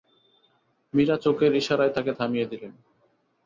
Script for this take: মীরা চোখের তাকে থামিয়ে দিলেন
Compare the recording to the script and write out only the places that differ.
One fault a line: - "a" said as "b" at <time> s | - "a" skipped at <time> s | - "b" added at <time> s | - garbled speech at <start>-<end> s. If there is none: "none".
- "ইশারায়" added at 1.6 s